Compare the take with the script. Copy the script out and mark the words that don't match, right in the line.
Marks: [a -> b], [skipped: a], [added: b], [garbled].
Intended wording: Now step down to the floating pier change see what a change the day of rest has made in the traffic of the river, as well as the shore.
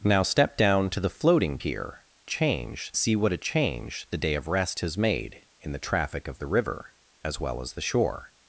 Now step down to the floating pier change see what a change the day of rest has made in the traffic of the river, as well as the shore.